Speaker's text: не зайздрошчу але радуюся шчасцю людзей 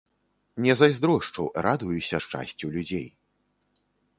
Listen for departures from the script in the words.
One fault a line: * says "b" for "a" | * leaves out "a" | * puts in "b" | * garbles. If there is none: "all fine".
* leaves out "але"